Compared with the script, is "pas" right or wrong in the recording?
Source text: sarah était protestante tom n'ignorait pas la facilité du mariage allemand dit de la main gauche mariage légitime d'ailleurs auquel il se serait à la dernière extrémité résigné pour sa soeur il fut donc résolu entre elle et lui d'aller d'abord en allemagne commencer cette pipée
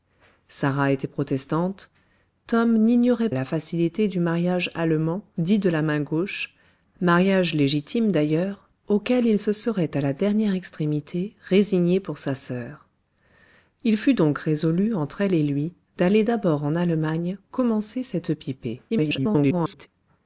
wrong